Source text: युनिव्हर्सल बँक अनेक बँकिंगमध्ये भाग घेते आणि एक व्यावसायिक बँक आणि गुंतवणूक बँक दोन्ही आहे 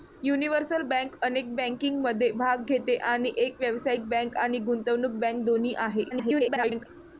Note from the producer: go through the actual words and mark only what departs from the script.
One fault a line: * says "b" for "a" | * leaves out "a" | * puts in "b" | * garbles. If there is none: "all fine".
* garbles